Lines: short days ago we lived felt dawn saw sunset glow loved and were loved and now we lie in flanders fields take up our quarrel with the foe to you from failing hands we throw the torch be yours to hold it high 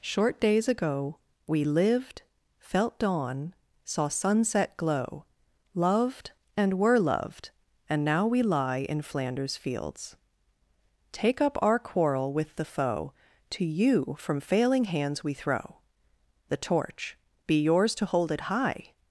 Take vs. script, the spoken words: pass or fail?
pass